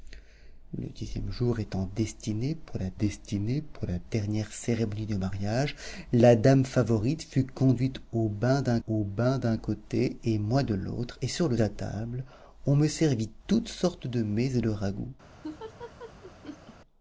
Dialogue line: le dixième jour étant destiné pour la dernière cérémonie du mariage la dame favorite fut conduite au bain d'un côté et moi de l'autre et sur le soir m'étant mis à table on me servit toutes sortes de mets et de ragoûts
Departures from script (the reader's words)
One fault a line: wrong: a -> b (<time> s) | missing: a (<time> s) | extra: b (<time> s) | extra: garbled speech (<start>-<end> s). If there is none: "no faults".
extra: destiné pour la (3.0 s)
extra: au bain d'un (8.9 s)
missing: soir m'étant mis (11.6 s)